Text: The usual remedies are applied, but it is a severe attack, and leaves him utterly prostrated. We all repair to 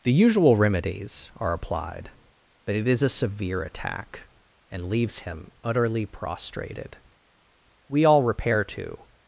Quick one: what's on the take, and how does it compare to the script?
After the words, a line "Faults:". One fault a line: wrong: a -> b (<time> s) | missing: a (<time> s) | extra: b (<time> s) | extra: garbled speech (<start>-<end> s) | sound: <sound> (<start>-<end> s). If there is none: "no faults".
The usual remedies are applied, but it is a severe attack, and leaves him utterly prostrated. We all repair to
Faults:
no faults